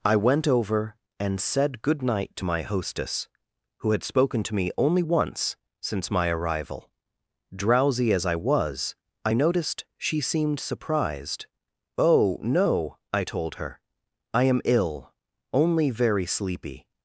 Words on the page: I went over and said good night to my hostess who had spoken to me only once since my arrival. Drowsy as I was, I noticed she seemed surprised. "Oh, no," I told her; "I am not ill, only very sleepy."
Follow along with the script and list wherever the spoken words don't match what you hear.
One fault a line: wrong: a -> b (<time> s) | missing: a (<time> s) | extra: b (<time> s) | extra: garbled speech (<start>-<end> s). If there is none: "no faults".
missing: not (14.6 s)